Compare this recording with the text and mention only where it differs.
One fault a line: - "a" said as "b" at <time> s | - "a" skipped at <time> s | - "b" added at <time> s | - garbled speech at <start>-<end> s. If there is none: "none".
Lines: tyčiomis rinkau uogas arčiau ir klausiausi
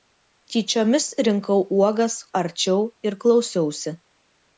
none